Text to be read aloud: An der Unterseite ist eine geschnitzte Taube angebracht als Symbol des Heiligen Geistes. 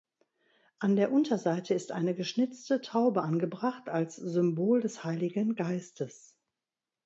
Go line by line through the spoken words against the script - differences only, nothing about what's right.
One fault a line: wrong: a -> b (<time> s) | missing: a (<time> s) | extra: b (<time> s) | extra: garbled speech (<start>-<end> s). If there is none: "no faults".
no faults